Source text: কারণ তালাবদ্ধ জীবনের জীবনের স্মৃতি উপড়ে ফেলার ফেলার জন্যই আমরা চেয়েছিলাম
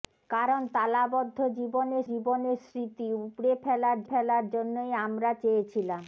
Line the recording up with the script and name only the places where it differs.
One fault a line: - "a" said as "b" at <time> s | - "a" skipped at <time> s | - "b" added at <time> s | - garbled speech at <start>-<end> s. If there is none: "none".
none